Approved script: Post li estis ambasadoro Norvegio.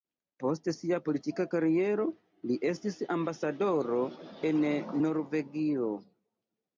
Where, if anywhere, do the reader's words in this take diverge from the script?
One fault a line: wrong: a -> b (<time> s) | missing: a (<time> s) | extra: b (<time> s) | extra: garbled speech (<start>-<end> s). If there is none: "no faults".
extra: sia politika kariero (0.8 s)
extra: en (4.5 s)